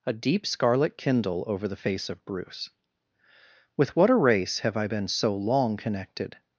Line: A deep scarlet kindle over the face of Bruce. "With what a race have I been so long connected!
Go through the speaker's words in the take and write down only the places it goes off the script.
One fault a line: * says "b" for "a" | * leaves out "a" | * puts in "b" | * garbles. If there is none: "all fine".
all fine